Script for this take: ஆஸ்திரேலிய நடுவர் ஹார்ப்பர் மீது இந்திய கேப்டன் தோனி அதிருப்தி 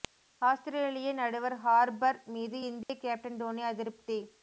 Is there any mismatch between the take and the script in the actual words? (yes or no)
no